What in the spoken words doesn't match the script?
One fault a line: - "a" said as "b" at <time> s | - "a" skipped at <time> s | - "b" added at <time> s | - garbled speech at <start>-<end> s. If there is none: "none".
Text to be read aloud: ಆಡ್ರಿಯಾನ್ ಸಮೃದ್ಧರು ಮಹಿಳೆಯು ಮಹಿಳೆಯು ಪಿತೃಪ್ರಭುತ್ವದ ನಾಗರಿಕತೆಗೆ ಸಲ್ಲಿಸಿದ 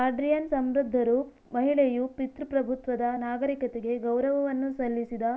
- "ಮಹಿಳೆಯು" skipped at 2.0 s
- "ಗೌರವವನ್ನು" added at 4.0 s